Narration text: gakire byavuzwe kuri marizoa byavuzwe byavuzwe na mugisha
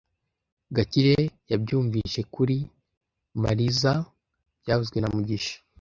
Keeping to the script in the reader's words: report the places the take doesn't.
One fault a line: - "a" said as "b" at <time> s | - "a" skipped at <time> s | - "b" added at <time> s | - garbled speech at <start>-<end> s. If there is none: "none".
- "byavuzwe" said as "yabyumvise" at 1.5 s
- "byavuzwe" skipped at 5.0 s